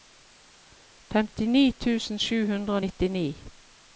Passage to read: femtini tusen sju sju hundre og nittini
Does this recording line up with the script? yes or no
no